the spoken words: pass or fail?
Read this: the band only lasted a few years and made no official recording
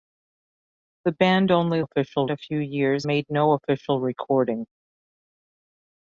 fail